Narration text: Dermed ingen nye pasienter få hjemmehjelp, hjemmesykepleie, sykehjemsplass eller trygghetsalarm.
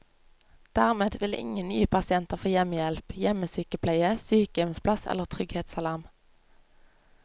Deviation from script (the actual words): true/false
true